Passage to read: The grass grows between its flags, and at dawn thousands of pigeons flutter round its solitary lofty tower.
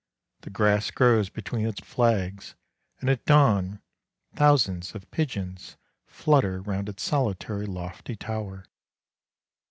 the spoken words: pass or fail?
pass